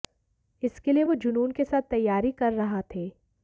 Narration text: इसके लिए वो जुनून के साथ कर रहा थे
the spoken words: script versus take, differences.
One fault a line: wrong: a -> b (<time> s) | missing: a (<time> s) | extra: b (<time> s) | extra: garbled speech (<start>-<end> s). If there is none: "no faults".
extra: तैयारी (1.9 s)